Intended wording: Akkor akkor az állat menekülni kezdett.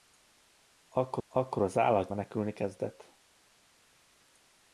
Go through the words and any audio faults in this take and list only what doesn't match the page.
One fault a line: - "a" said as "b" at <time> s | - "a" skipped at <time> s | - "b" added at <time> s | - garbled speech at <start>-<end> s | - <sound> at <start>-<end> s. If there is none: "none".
none